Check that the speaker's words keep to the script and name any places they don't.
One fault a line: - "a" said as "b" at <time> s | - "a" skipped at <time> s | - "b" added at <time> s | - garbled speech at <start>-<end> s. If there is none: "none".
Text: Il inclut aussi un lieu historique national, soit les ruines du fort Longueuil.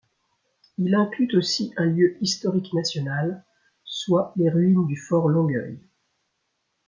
none